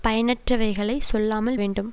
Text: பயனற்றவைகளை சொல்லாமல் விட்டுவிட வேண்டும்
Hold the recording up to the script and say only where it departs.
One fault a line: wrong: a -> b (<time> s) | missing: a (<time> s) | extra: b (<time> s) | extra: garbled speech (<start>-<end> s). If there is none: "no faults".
missing: விட்டுவிட (1.6 s)